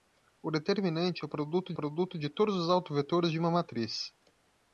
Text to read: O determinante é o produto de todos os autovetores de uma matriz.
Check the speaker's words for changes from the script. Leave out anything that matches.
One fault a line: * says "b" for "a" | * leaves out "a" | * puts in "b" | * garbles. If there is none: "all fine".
* puts in "produto"